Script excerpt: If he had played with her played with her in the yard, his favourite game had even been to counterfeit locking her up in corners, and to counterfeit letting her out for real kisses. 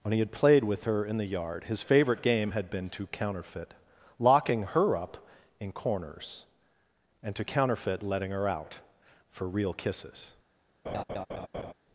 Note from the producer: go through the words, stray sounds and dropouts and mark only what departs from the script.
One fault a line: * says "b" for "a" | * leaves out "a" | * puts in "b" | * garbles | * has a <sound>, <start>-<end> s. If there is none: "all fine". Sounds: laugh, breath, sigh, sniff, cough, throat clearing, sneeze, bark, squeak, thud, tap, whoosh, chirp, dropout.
* says "When" for "If"
* leaves out "played with her"
* leaves out "even"
* has a laugh, 10.8-11.7 s